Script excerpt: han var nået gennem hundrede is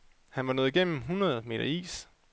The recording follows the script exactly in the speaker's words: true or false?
false